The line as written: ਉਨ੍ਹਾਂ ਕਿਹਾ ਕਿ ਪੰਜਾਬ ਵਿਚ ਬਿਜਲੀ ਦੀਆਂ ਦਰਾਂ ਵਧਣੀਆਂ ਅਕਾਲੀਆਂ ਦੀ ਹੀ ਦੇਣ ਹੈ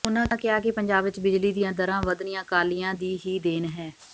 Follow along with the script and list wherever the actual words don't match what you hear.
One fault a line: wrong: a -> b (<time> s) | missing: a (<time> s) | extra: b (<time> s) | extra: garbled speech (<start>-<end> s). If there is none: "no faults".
no faults